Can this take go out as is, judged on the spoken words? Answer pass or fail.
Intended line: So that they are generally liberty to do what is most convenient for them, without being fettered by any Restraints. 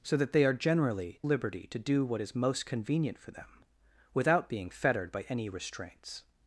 pass